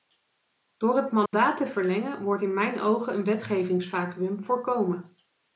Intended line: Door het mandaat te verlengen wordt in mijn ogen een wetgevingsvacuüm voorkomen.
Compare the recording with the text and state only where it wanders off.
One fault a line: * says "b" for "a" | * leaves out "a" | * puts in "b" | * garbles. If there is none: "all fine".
all fine